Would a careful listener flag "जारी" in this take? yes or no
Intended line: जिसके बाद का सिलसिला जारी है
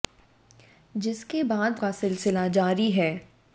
no